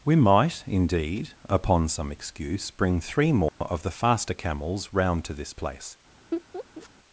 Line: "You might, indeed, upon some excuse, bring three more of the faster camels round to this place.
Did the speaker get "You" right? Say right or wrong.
wrong